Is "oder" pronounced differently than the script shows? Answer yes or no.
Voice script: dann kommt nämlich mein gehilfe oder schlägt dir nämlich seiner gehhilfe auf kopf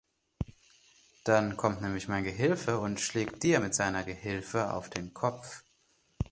yes